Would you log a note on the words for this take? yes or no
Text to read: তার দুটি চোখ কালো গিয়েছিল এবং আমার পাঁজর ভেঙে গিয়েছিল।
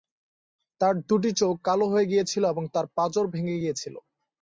yes